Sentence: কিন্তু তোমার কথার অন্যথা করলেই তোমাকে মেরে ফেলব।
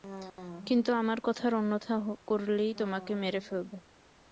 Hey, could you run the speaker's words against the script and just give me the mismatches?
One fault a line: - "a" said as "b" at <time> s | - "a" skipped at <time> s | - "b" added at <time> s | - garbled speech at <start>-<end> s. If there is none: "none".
- "তোমার" said as "আমার" at 0.9 s